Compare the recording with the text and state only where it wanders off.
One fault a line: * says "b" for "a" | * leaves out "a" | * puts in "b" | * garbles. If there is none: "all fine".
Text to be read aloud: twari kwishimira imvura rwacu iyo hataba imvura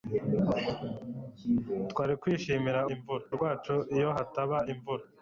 all fine